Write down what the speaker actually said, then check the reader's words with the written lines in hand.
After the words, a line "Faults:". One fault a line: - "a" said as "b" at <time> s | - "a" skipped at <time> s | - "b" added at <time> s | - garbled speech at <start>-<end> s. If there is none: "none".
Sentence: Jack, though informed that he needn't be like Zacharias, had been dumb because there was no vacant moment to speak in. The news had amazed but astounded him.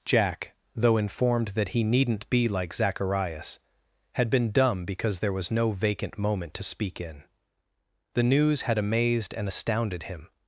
Jack, though informed that he needn't be like Zacharias, had been dumb because there was no vacant moment to speak in. The news had amazed and astounded him.
Faults:
- "but" said as "and" at 9.3 s